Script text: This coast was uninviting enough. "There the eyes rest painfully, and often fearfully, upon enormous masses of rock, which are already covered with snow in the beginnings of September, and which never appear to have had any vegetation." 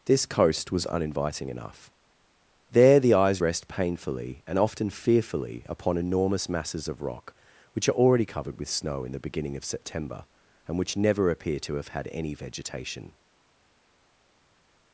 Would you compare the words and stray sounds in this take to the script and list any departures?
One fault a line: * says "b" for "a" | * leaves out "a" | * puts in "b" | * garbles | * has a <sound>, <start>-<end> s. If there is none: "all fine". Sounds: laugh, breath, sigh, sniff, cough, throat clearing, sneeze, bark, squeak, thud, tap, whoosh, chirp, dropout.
* says "beginning" for "beginnings"